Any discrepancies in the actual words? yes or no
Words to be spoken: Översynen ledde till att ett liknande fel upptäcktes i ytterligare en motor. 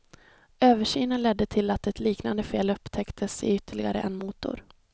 no